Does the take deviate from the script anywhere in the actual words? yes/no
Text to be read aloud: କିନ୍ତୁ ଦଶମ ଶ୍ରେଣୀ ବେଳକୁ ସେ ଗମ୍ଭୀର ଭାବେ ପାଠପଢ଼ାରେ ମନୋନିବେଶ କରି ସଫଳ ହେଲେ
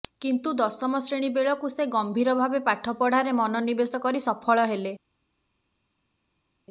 no